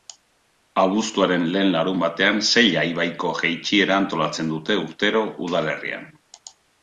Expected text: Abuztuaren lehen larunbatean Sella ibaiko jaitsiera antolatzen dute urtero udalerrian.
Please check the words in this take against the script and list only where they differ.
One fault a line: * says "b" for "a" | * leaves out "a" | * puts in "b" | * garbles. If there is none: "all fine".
all fine